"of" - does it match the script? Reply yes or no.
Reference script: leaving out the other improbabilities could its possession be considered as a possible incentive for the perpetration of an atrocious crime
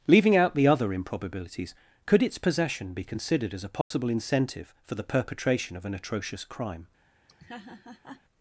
yes